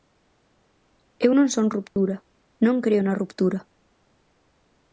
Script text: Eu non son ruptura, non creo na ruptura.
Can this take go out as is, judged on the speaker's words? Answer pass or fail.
pass